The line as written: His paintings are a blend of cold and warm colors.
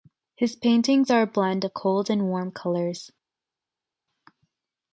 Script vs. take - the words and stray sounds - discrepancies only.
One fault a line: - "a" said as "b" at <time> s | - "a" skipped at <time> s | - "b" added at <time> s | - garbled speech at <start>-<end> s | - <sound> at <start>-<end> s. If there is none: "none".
none